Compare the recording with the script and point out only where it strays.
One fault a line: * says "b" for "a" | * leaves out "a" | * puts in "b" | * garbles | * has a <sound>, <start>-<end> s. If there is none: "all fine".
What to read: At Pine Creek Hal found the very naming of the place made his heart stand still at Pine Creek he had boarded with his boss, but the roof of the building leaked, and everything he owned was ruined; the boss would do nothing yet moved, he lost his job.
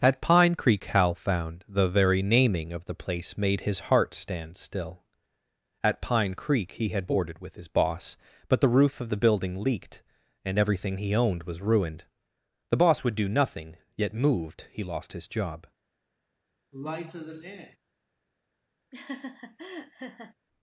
* has a sigh, 16.7-17.8 s
* has a laugh, 18.9-20.3 s